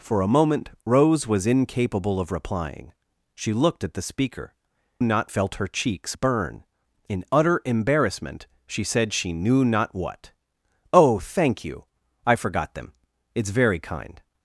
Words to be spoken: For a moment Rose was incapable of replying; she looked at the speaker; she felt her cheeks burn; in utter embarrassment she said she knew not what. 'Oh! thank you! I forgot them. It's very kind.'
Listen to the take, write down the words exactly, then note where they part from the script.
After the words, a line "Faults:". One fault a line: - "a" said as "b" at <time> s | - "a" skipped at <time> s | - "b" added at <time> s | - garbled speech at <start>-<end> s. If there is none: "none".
For a moment Rose was incapable of replying; she looked at the speaker; not felt her cheeks burn; in utter embarrassment she said she knew not what. 'Oh! thank you! I forgot them. It's very kind.'
Faults:
- "she" said as "not" at 5.0 s